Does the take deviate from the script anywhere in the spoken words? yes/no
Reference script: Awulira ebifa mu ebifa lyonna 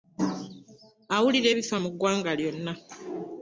yes